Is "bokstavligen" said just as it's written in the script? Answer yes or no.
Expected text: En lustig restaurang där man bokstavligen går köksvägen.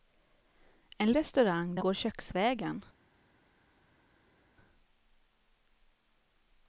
no